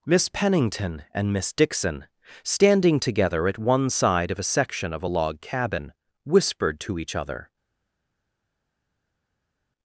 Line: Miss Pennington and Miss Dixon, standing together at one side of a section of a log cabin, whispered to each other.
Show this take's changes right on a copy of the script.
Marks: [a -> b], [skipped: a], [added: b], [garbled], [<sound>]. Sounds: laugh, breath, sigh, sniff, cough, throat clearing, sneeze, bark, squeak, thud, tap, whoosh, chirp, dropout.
Miss Pennington and Miss Dixon, standing together at one side of a section of a log cabin, whispered to each other.